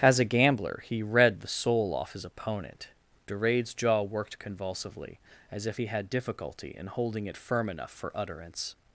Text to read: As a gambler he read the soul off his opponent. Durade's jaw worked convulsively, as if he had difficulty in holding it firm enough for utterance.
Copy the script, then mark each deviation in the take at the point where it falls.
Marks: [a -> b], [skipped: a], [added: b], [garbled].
As a gambler he read the soul off his opponent. Durade's jaw worked convulsively, as if he had difficulty in holding it firm enough for utterance.